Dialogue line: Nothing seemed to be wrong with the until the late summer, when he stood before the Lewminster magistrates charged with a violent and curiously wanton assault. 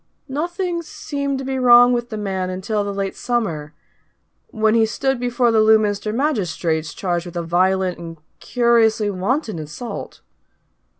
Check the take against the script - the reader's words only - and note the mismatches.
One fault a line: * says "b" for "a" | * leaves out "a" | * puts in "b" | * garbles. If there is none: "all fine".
* puts in "man"